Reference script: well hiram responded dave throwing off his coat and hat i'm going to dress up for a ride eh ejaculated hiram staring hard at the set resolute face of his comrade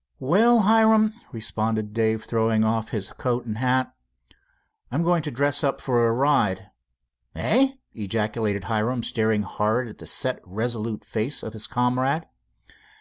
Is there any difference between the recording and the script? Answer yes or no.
no